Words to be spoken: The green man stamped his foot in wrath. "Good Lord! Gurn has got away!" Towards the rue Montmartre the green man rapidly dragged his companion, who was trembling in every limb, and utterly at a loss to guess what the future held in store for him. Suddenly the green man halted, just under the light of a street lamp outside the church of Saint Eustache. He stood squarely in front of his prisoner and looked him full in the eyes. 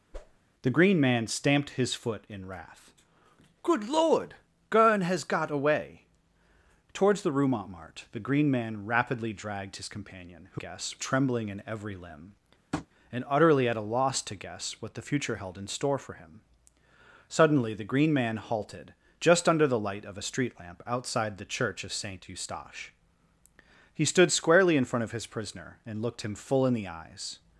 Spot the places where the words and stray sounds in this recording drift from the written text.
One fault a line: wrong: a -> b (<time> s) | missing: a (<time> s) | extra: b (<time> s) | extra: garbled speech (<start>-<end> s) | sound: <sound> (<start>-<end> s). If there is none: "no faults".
sound: whoosh (0.1-0.4 s)
wrong: was -> guess (10.5 s)
sound: tap (12.7-12.9 s)